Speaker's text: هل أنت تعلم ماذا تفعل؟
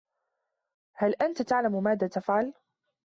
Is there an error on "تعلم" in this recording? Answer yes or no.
no